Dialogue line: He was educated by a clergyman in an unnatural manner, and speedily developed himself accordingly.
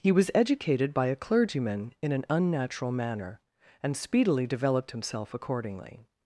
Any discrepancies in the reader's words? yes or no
no